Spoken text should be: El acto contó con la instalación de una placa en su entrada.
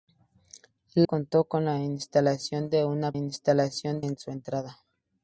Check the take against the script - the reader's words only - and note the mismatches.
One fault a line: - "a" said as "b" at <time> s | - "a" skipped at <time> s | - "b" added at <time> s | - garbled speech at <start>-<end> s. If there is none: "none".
- "acto" skipped at 1.1 s
- "placa" said as "instalación" at 3.1 s